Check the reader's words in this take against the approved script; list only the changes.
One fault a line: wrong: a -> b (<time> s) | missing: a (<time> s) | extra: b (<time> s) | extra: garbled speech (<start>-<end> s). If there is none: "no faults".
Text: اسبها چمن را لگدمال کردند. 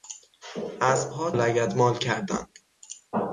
missing: چمن را (1.3 s)